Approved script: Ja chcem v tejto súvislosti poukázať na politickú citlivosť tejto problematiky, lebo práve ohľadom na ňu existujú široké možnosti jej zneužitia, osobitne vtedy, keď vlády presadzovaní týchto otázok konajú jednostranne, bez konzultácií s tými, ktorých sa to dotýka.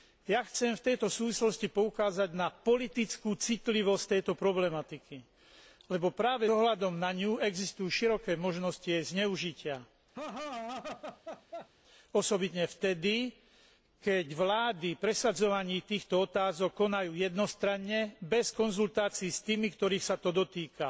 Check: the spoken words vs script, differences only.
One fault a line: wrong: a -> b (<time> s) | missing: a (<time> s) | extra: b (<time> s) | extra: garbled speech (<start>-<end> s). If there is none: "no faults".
no faults